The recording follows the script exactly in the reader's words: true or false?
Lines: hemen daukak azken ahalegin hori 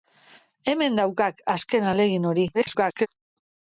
false